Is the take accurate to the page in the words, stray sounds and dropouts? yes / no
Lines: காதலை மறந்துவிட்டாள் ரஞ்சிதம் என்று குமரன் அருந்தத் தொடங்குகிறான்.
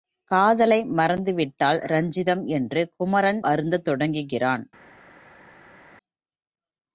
yes